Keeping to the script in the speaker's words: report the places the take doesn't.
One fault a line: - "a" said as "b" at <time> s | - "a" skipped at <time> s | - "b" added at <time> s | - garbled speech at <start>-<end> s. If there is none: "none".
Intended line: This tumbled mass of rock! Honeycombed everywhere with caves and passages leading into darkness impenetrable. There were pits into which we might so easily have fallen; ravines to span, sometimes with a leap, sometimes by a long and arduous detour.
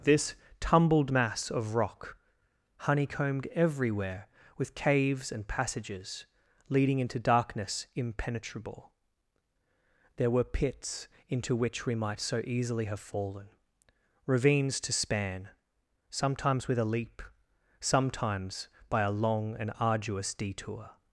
none